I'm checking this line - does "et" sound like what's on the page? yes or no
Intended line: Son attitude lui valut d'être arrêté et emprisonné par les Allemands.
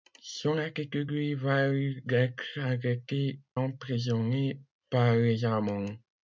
no